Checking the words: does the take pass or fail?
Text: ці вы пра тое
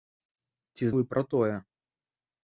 pass